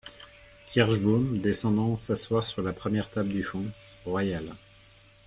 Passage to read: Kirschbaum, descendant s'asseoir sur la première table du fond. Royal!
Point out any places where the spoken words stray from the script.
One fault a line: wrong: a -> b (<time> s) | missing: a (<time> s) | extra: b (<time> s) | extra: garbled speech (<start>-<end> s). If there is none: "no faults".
no faults